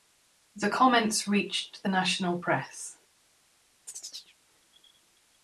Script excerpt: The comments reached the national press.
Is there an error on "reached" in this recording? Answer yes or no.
no